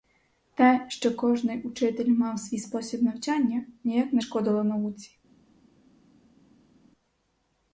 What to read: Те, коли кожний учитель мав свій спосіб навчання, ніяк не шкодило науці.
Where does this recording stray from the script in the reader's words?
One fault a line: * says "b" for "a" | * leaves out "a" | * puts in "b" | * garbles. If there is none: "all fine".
* says "що" for "коли"